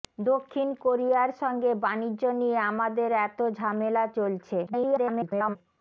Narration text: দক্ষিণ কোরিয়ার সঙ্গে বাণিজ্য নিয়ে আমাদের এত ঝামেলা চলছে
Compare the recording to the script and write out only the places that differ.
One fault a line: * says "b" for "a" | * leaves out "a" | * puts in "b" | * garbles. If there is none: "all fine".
* garbles